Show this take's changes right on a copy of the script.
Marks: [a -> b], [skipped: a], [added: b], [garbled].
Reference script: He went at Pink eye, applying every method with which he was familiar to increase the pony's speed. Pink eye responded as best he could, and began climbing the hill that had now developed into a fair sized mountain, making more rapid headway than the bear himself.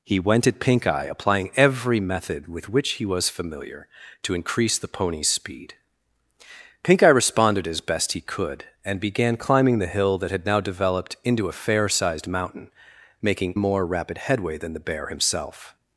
He went at Pink eye, applying every method with which he was familiar to increase the pony's speed. Pink eye responded as best he could, and began climbing the hill that had now developed into a fair sized mountain, making more rapid headway than the bear himself.